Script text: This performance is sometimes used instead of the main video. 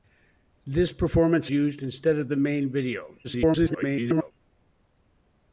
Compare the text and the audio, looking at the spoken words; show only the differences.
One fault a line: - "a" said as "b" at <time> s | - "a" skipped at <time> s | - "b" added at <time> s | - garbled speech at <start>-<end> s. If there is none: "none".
- "is sometimes" skipped at 1.5 s
- garbled speech at 3.2-4.3 s